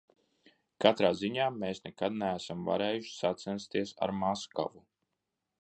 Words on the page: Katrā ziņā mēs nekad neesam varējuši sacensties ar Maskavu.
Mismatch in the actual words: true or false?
false